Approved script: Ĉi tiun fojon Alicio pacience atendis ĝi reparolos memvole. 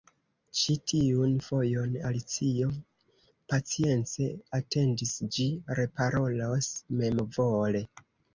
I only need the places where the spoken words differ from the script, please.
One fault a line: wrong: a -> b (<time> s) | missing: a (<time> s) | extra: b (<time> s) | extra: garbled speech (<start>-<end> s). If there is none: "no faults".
no faults